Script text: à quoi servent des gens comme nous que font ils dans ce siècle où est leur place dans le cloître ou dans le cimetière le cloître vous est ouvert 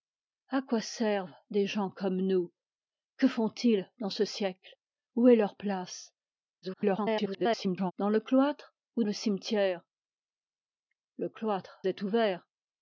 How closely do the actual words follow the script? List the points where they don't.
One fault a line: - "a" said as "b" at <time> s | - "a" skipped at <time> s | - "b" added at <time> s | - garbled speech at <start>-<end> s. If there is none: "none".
- garbled speech at 6.6-7.9 s
- "dans" skipped at 9.0 s
- "vous" skipped at 11.8 s